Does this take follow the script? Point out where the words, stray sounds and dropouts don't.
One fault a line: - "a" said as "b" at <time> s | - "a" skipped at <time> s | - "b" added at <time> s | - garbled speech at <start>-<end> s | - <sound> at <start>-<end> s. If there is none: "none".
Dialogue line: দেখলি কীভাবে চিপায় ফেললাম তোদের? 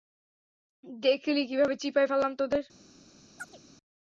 - chirp at 3.4-3.6 s